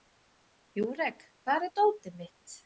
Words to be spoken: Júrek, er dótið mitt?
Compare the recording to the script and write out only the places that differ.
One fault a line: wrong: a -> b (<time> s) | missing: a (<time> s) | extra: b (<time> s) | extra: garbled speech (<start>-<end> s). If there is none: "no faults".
extra: hvar (1.4 s)